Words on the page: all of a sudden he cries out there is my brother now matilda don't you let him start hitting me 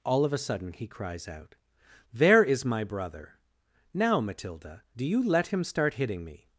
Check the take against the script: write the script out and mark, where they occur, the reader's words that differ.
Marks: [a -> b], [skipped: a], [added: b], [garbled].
all of a sudden he cries out there is my brother now matilda [don't -> do] you let him start hitting me